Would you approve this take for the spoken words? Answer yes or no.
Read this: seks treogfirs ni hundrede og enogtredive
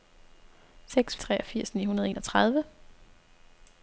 yes